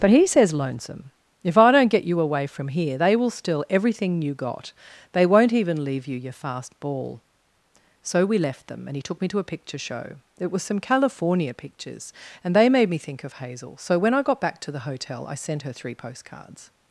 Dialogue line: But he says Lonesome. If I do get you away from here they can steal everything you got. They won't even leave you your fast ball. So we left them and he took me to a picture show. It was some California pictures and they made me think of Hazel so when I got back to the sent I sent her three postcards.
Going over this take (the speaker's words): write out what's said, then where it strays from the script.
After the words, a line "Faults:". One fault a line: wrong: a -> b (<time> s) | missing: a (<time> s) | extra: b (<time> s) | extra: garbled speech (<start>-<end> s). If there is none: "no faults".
But he says Lonesome. If I don't get you away from here they will steal everything you got. They won't even leave you your fast ball. So we left them and he took me to a picture show. It was some California pictures and they made me think of Hazel so when I got back to the hotel I sent her three postcards.
Faults:
wrong: do -> don't (1.7 s)
wrong: can -> will (3.1 s)
wrong: sent -> hotel (14.8 s)